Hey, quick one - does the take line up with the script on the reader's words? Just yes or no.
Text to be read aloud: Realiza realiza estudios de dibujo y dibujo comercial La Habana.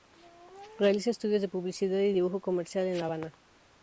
no